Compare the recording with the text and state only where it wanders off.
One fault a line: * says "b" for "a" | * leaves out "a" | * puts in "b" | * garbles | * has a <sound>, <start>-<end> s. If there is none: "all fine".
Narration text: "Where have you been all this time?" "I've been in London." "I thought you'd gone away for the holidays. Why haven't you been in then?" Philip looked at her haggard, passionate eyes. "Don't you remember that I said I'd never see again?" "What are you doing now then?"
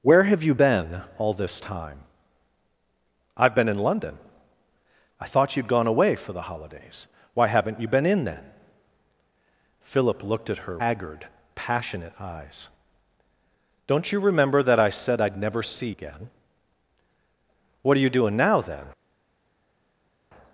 all fine